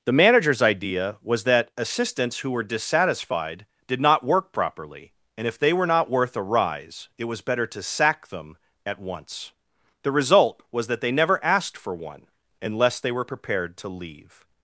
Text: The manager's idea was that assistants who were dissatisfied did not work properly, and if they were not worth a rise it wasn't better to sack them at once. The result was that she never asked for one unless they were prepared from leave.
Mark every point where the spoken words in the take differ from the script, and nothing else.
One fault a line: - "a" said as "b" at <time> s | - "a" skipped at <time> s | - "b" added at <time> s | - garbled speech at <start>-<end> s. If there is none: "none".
- "wasn't" said as "was" at 7.2 s
- "she" said as "they" at 11.0 s
- "from" said as "to" at 13.8 s